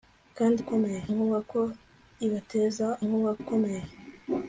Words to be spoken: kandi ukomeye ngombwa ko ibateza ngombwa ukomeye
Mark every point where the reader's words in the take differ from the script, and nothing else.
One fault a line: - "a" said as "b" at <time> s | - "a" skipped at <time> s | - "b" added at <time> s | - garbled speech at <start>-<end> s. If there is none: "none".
none